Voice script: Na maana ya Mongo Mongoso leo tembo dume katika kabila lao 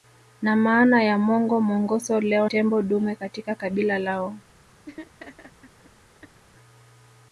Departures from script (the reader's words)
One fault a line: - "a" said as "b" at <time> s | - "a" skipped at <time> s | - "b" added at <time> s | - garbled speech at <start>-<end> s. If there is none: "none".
none